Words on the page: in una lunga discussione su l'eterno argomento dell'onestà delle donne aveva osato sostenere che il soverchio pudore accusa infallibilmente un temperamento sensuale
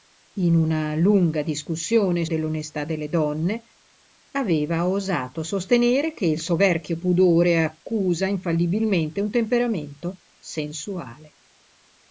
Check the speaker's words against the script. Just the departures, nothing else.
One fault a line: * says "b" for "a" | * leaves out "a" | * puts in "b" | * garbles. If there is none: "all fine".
* leaves out "su l'eterno argomento"